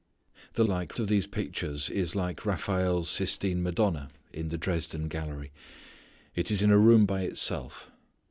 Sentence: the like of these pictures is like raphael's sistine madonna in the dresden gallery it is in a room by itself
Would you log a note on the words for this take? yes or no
no